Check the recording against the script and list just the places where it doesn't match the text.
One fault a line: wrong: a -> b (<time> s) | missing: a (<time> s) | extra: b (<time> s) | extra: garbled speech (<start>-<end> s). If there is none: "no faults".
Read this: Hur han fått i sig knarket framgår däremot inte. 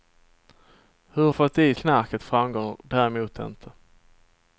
missing: han (1.3 s)
missing: sig (1.7 s)